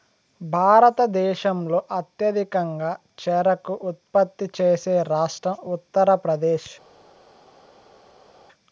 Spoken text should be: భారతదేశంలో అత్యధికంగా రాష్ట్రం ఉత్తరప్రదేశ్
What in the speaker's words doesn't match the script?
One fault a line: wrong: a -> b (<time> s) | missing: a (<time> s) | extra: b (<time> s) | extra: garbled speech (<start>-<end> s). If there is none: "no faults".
extra: చెరకు ఉత్పత్తి చేసే (3.2 s)